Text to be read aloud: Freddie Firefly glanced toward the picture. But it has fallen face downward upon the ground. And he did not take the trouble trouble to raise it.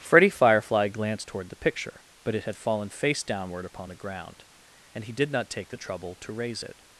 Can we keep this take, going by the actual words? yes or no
no